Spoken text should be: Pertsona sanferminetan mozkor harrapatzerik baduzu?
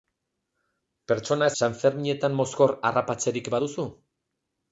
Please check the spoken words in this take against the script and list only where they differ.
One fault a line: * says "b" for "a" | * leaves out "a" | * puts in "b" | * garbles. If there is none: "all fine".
all fine